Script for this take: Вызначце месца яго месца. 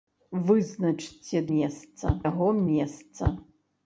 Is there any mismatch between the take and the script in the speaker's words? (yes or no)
no